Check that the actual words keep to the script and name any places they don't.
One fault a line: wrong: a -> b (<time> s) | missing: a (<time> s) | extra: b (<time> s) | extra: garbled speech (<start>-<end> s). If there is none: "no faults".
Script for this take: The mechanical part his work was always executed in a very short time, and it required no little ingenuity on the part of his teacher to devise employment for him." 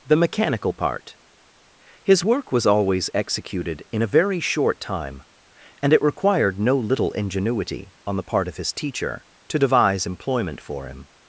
no faults